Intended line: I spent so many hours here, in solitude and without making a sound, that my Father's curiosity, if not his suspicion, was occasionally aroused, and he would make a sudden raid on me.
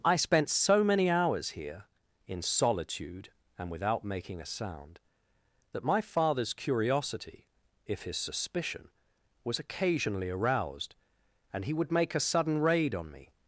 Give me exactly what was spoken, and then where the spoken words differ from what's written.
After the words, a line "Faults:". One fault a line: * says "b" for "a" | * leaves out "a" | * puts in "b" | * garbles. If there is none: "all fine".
I spent so many hours here, in solitude and without making a sound, that my Father's curiosity, if his suspicion, was occasionally aroused, and he would make a sudden raid on me.
Faults:
* leaves out "not"